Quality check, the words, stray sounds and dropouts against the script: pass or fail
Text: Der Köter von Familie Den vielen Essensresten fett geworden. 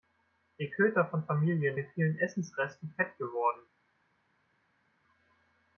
pass